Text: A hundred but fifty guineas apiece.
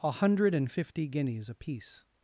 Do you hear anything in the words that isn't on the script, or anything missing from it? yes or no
yes